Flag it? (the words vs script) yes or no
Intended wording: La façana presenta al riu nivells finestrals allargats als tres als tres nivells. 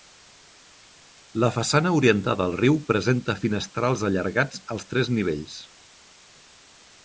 yes